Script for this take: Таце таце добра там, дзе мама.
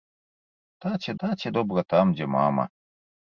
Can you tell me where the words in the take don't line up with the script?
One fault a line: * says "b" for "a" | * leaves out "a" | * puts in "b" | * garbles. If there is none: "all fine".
all fine